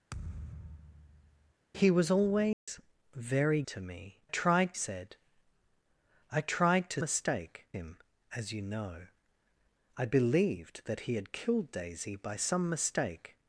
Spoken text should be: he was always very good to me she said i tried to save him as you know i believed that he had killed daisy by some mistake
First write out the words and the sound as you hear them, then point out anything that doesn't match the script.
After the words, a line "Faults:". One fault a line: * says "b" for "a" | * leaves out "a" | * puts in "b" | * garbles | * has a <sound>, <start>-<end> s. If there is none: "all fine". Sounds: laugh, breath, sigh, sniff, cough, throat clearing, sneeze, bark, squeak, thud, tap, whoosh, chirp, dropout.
he was always very to me tried said i tried to mistake him as you know i believed that he had killed daisy by some mistake
Faults:
* has a thud, 0.1-1.5 s
* has a dropout, 2.5-2.7 s
* leaves out "good"
* says "tried" for "she"
* says "mistake" for "save"